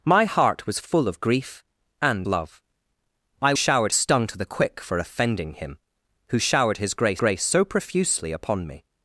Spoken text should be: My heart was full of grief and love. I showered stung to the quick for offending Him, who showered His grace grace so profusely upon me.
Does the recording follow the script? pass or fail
pass